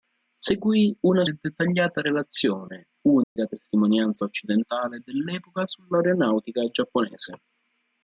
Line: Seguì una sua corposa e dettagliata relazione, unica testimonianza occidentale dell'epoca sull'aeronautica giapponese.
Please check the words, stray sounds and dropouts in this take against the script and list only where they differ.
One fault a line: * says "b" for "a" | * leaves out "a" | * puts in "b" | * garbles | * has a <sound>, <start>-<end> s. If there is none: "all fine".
* leaves out "sua corposa"
* has a dropout, 3.2-3.4 s